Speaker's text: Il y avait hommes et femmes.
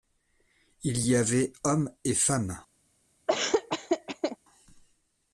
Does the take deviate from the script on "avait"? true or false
false